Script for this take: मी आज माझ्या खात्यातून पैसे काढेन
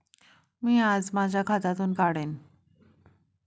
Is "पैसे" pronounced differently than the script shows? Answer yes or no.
yes